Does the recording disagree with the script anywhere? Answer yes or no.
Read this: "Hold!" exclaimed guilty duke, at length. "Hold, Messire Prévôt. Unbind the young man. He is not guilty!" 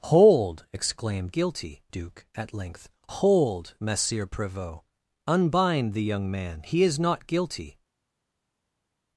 no